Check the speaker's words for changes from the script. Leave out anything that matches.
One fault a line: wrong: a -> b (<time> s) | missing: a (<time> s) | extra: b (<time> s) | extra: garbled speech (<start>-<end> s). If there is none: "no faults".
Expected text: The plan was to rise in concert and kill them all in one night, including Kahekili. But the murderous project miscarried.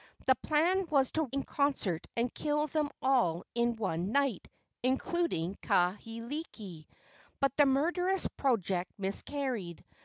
missing: rise (1.3 s)